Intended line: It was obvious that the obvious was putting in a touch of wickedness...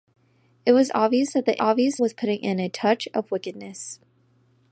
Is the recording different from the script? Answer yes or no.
no